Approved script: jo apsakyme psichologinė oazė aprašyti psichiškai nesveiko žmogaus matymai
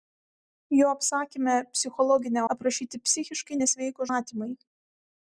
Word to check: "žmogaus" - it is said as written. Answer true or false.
false